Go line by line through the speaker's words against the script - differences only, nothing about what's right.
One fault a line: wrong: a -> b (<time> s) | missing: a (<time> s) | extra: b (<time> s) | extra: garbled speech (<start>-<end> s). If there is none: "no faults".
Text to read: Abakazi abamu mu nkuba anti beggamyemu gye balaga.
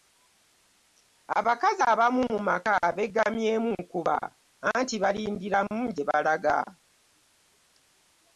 extra: maka beggamyemu (2.5 s)
wrong: beggamyemu -> balindiramu (5.0 s)